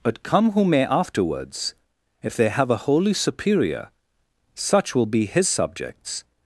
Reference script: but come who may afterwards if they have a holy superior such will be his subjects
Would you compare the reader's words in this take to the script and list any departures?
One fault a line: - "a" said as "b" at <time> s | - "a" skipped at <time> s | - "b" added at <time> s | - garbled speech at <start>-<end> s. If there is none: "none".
none